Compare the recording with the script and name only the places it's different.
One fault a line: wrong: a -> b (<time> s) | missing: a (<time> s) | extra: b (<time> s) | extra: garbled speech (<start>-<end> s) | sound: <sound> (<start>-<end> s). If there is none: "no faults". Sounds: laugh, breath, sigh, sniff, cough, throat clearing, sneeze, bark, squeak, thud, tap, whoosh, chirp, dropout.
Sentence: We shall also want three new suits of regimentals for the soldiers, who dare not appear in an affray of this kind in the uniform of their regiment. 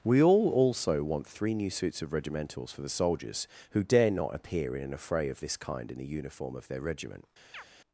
wrong: shall -> all (0.2 s)
sound: chirp (7.5-7.6 s)